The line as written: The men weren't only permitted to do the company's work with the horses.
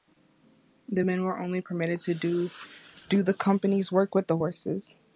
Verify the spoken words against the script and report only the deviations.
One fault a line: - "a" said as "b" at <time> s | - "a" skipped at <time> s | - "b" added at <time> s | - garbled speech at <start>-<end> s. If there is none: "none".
- "weren't" said as "were" at 1.3 s